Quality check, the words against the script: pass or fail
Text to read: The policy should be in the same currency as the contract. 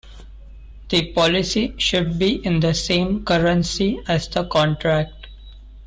pass